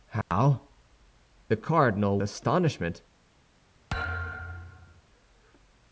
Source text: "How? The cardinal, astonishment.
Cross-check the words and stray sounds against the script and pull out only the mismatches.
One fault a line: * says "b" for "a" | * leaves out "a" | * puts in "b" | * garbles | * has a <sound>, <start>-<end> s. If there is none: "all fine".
* has a dropout, 0.2-0.3 s
* has a thud, 3.9-5.0 s